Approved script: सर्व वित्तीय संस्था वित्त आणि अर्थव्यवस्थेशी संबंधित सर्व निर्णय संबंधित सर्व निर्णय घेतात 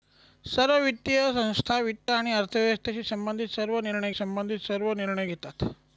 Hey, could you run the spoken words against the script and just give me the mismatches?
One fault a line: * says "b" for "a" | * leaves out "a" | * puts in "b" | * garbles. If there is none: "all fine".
all fine